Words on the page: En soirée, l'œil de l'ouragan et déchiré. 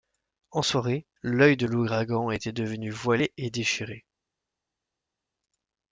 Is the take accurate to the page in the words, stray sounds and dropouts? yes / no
no